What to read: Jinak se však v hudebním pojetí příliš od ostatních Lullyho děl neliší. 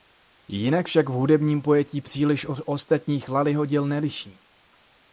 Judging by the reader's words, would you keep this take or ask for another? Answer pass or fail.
fail